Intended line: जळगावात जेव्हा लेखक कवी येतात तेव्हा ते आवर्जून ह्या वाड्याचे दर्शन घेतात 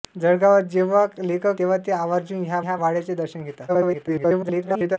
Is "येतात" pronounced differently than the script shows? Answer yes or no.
yes